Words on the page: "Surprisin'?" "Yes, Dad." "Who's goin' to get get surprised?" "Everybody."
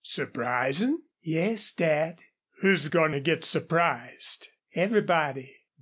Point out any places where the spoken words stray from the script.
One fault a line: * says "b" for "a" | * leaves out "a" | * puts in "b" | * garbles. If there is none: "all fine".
* leaves out "get"